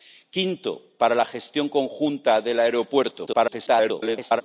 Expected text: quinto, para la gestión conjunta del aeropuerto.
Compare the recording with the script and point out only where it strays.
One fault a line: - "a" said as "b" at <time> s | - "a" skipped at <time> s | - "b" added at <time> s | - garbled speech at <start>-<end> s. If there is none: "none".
- garbled speech at 3.3-4.4 s